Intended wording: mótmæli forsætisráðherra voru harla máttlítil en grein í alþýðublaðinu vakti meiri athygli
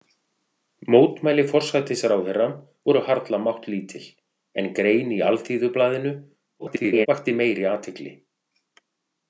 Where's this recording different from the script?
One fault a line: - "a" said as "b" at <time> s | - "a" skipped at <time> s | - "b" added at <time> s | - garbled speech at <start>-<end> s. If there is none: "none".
- garbled speech at 6.6-7.1 s